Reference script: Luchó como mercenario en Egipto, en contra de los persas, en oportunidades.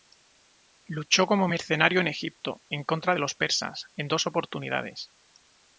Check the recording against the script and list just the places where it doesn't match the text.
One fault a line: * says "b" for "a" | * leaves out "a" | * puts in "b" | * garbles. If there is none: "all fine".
* puts in "dos"